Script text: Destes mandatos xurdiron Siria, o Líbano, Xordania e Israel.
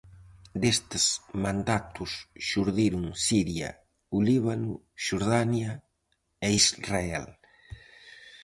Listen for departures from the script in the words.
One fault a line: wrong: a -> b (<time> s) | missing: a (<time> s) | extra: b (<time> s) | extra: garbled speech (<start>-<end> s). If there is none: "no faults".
no faults